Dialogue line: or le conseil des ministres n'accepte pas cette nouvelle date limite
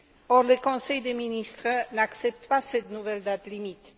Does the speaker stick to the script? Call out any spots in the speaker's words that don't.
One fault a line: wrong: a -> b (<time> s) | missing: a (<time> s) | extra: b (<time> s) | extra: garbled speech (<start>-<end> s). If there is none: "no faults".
no faults